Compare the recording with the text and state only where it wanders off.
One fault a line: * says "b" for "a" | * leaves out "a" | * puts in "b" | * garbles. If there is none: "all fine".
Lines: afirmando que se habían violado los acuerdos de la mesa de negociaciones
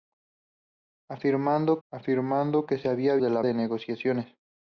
* puts in "afirmando"
* leaves out "violado los acuerdos"
* leaves out "mesa"